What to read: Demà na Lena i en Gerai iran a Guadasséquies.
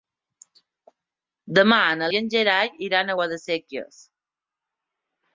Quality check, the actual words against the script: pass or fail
fail